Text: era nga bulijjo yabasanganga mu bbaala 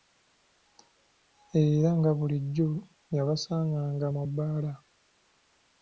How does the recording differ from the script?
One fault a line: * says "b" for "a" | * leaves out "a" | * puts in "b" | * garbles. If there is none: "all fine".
all fine